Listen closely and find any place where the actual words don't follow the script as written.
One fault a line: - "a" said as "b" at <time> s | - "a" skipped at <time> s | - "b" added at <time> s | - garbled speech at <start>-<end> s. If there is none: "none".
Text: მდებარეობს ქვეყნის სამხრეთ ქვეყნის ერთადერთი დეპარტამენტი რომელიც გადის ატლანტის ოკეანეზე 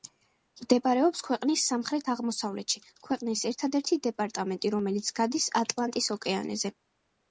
- "აღმოსავლეთში" added at 2.1 s